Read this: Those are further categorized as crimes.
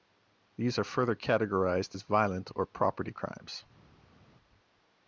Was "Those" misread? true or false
true